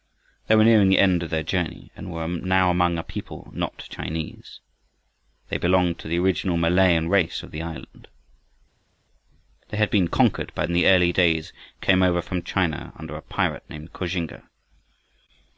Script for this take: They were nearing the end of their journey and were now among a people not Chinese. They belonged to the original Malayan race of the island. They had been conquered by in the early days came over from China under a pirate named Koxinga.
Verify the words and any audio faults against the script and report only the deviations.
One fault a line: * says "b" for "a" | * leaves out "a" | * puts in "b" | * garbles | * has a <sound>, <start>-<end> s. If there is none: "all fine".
all fine